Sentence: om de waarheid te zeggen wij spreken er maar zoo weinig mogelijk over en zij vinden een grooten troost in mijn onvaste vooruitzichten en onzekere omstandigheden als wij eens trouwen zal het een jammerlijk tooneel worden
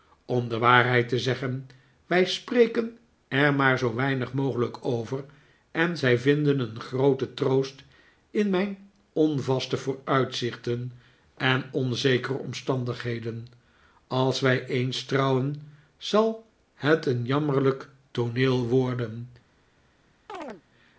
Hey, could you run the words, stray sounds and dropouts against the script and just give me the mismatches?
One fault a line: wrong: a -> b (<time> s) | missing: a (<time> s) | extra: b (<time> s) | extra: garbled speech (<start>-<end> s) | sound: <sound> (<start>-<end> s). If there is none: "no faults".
sound: chirp (20.3-20.6 s)